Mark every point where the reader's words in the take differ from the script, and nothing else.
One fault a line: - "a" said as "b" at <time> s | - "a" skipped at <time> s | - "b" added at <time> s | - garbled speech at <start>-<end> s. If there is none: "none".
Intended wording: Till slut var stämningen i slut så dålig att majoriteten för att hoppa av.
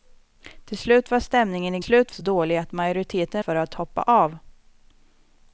none